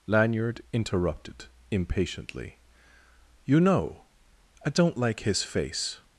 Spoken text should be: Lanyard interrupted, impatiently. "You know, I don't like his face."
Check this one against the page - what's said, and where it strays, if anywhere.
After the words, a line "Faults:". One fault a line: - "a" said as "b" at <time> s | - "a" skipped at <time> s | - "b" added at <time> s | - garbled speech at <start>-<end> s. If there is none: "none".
Lanyard interrupted, impatiently. "You know, I don't like his face."
Faults:
none